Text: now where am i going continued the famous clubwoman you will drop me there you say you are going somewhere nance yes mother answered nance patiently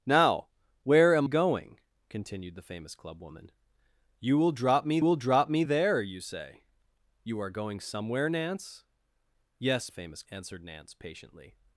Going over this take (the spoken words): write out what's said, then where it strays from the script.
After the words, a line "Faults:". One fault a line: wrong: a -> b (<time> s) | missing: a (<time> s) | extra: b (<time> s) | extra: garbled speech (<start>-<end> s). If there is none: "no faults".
now where am going continued the famous clubwoman you will drop me will drop me there you say you are going somewhere nance yes famous answered nance patiently
Faults:
missing: i (1.3 s)
extra: will drop me (5.0 s)
wrong: mother -> famous (9.9 s)